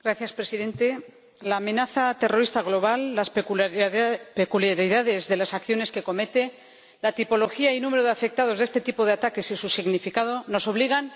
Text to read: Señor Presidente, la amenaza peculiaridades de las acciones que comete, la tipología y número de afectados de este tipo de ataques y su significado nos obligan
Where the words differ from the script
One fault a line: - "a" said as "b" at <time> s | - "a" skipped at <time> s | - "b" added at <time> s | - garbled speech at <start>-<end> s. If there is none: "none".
- "terrorista global las" added at 2.2 s